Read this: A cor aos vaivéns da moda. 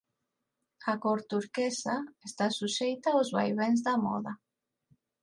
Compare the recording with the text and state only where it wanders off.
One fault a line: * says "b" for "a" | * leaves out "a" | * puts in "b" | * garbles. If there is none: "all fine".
* puts in "turquesa está suxeita"